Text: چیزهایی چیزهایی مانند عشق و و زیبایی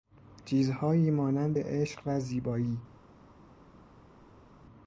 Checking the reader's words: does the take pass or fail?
fail